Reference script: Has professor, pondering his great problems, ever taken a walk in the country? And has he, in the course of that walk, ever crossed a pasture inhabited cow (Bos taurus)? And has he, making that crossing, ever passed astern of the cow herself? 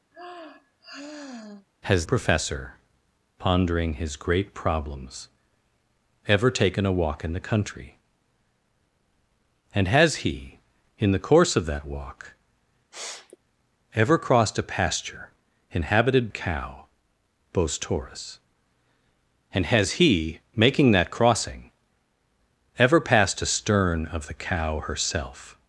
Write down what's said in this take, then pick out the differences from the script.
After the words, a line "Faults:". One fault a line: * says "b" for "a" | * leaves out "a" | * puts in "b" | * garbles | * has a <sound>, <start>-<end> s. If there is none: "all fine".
Has professor, pondering his great problems, ever taken a walk in the country? And has he, in the course of that walk, ever crossed a pasture inhabited cow (Bos taurus)? And has he, making that crossing, ever passed astern of the cow herself?
Faults:
* has a sigh, 0.1-1.7 s
* has a sniff, 12.9-13.4 s